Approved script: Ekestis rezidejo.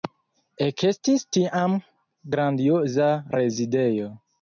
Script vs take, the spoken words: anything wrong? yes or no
yes